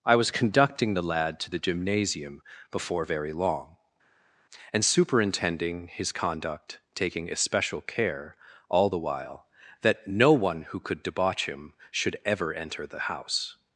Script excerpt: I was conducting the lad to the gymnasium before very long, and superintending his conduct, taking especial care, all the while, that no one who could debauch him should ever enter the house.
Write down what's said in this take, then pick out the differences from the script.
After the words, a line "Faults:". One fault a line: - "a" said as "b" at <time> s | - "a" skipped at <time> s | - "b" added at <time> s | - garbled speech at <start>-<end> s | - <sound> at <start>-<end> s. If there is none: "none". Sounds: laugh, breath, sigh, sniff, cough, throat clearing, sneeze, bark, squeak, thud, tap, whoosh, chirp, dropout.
I was conducting the lad to the gymnasium before very long, and superintending his conduct, taking especial care, all the while, that no one who could debauch him should ever enter the house.
Faults:
none